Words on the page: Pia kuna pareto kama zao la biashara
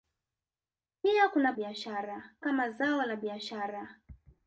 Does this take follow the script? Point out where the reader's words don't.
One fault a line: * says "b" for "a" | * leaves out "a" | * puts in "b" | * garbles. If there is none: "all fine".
* says "biashara" for "pareto"